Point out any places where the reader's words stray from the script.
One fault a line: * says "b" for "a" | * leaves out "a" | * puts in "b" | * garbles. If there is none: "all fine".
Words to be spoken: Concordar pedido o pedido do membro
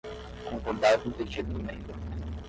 * says "com" for "pedido"